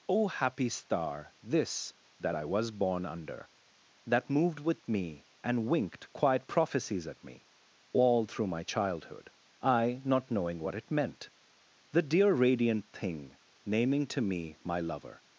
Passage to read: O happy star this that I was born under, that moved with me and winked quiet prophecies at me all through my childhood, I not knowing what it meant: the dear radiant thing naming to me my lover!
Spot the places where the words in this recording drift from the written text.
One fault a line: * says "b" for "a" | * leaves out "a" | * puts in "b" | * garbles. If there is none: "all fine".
all fine